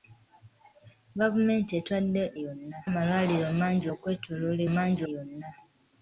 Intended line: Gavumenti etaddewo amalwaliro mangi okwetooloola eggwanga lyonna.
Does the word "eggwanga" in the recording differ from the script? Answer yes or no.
yes